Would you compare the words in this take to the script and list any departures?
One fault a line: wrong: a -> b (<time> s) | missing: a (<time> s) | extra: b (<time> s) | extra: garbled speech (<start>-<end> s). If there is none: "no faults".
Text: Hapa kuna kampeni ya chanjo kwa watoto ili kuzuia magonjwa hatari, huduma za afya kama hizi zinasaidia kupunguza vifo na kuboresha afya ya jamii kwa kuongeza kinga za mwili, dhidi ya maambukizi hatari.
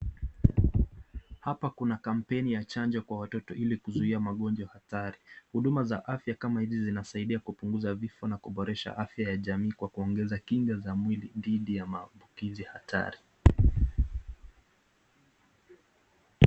no faults